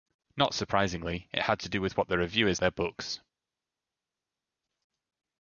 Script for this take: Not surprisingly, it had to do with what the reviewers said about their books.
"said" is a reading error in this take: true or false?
true